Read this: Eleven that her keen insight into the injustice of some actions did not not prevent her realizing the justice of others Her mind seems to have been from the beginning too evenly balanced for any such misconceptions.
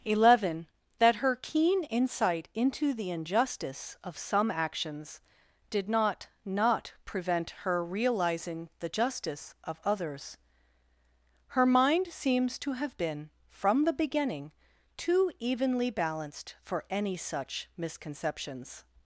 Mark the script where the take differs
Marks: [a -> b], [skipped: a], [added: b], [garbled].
Eleven that her keen insight into the injustice of some actions did not not prevent her realizing the justice of others Her mind seems to have been from the beginning too evenly balanced for any such misconceptions.